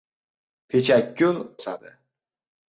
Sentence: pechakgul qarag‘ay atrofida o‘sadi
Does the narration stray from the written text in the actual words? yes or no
yes